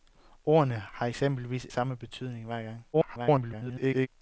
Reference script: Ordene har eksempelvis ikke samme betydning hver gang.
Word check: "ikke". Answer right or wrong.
wrong